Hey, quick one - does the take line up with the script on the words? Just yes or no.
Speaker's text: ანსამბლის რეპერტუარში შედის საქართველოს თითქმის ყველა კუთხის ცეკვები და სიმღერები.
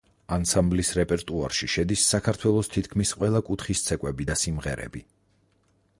yes